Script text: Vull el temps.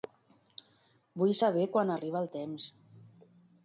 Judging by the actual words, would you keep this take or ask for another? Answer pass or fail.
fail